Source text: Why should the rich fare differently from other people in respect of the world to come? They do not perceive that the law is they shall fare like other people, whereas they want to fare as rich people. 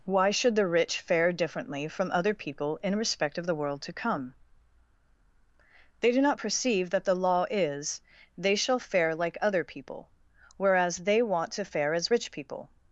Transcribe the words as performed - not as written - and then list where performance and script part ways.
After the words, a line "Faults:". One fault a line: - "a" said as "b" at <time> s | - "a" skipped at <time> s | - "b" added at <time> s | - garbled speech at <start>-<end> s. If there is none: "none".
Why should the rich fare differently from other people in respect of the world to come? They do not perceive that the law is they shall fare like other people, whereas they want to fare as rich people.
Faults:
none